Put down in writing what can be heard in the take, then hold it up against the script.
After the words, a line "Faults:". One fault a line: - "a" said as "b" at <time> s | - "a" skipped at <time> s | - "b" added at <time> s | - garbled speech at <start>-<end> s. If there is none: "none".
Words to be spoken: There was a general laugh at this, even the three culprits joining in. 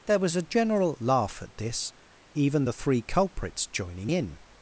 There was a general laugh at this, even the three culprits joining in.
Faults:
none